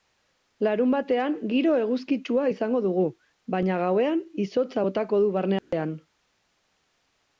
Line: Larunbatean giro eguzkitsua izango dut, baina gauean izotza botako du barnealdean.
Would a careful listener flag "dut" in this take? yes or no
yes